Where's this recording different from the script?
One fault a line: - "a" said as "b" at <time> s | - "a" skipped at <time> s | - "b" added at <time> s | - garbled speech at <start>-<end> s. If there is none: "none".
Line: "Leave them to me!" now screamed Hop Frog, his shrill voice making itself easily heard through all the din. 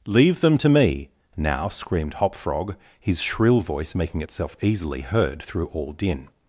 - "the" skipped at 5.9 s